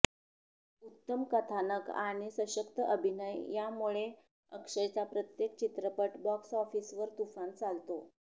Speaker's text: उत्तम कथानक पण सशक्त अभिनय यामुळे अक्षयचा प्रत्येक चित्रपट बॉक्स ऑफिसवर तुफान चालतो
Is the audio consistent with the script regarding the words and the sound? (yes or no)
no